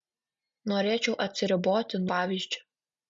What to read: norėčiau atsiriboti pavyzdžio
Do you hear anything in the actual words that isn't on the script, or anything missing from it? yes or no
no